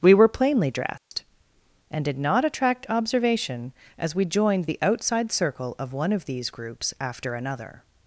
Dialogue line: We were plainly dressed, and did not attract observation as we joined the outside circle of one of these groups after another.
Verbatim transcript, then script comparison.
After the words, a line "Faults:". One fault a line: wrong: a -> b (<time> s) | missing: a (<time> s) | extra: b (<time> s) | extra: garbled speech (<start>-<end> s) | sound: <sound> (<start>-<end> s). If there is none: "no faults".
We were plainly dressed, and did not attract observation as we joined the outside circle of one of these groups after another.
Faults:
sound: dropout (1.0-1.1 s)